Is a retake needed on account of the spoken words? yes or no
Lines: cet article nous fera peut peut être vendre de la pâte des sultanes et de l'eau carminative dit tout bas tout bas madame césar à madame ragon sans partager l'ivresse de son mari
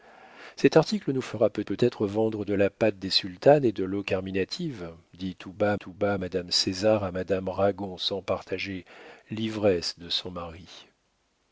no